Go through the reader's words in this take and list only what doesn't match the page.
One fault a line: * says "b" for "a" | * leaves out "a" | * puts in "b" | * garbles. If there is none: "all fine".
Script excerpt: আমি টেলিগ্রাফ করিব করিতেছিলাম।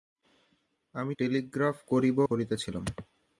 all fine